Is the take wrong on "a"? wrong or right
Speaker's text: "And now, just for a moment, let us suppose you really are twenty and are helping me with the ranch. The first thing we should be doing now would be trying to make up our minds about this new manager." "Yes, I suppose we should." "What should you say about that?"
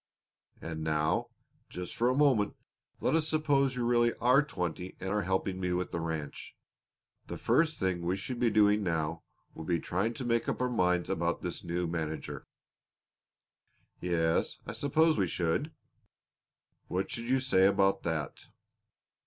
right